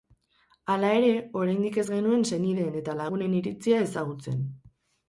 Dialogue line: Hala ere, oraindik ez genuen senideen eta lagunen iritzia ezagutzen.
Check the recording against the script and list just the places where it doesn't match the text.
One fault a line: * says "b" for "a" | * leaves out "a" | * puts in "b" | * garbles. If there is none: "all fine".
all fine